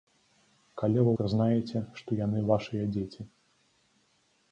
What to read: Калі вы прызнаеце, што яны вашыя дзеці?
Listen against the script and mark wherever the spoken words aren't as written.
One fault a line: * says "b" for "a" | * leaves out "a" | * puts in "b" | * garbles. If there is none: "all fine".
all fine